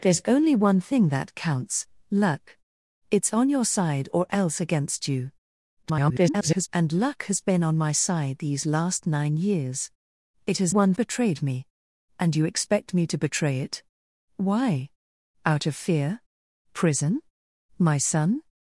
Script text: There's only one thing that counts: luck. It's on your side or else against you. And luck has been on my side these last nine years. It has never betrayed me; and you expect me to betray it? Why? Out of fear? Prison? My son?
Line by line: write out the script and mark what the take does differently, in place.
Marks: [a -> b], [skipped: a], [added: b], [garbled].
There's only one thing that counts: luck. It's on your side or else against you. [garbled] And luck has been on my side these last nine years. It has [never -> one] betrayed me; and you expect me to betray it? Why? Out of fear? Prison? My son?